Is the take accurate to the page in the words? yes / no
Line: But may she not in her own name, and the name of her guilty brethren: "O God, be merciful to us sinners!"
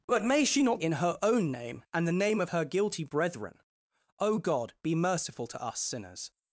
yes